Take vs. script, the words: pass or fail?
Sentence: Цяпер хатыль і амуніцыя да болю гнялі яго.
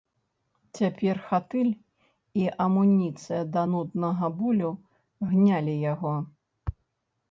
fail